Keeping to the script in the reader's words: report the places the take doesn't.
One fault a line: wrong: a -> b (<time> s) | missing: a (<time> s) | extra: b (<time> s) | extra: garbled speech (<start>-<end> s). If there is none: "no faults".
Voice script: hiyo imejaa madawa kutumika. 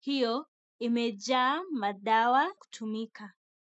no faults